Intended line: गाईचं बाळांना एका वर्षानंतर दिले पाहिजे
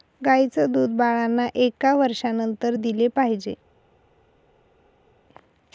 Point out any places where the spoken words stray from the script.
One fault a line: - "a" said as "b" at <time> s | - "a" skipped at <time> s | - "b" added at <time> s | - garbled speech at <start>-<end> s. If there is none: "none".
- "दूध" added at 0.7 s